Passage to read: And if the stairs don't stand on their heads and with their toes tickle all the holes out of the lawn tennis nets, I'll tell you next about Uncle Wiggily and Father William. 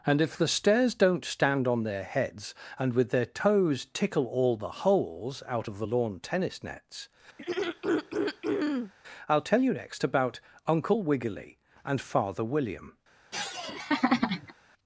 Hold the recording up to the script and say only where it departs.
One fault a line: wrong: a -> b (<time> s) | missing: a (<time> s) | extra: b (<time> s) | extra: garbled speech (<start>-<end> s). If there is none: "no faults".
no faults